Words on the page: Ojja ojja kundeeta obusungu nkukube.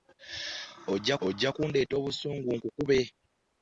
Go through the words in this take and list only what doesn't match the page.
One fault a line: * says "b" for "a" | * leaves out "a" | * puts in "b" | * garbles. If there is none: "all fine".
all fine